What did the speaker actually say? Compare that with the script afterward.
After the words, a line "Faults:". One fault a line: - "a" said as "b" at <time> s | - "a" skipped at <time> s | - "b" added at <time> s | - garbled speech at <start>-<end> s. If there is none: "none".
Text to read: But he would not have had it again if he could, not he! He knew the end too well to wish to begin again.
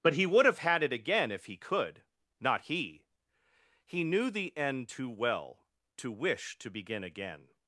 But he would have had it again if he could, not he! He knew the end too well to wish to begin again.
Faults:
- "not" skipped at 0.5 s